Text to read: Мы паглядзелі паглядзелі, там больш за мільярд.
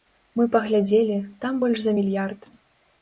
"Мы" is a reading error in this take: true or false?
false